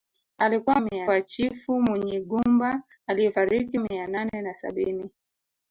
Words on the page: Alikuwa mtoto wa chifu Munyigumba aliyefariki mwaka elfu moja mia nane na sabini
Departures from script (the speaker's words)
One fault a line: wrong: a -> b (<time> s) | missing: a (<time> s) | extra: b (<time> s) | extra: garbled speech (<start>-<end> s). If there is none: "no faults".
wrong: mtoto -> mia (0.8 s)
missing: mwaka elfu moja (3.8 s)